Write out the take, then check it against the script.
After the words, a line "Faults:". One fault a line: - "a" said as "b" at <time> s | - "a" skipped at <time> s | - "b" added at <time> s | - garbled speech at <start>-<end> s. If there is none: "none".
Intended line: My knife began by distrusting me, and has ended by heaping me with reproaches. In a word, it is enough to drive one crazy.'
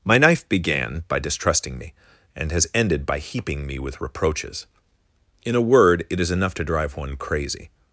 My knife began by distrusting me, and has ended by heaping me with reproaches. In a word, it is enough to drive one crazy.'
Faults:
none